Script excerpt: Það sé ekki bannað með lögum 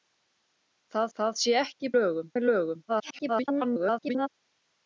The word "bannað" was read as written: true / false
false